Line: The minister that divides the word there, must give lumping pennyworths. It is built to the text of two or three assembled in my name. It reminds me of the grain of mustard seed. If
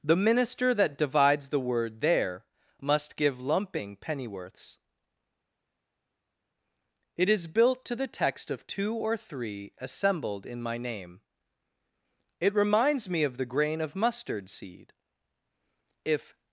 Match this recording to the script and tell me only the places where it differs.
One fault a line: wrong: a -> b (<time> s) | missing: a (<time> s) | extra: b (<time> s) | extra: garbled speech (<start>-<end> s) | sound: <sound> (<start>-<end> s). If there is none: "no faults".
no faults